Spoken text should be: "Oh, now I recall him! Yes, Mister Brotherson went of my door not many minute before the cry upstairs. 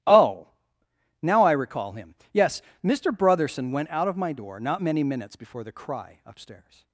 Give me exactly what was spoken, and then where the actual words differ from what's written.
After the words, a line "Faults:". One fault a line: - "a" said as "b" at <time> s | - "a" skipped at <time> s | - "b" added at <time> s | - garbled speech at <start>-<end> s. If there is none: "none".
"Oh, now I recall him! Yes, Mister Brotherson went out of my door not many minutes before the cry upstairs.
Faults:
- "out" added at 3.9 s
- "minute" said as "minutes" at 5.0 s